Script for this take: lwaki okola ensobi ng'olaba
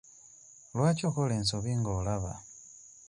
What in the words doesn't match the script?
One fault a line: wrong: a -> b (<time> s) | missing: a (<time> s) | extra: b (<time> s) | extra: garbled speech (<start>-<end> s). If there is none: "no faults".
no faults